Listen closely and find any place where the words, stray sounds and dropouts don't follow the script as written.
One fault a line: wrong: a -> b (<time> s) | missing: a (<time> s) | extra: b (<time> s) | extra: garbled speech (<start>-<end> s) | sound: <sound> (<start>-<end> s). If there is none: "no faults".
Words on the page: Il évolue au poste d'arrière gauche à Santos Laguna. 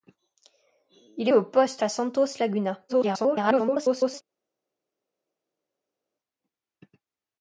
missing: évolue (1.3 s)
missing: d'arrière gauche (1.8 s)
extra: garbled speech (2.9-4.2 s)